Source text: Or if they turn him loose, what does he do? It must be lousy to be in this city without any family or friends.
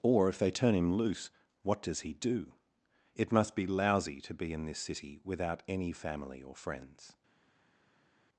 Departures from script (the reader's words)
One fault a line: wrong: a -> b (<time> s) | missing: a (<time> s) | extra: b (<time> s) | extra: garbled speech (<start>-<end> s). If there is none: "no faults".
no faults